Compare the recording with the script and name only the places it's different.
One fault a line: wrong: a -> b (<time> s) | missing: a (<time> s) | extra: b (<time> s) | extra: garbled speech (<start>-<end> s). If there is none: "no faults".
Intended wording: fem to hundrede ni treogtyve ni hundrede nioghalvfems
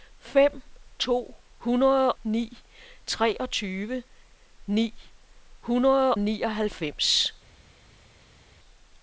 no faults